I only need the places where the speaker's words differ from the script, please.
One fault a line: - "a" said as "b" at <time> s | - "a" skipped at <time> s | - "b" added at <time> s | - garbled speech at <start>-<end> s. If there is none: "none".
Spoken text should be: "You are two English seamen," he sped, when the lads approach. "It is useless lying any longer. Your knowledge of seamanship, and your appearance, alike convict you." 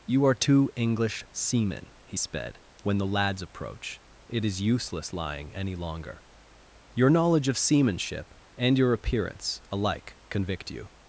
none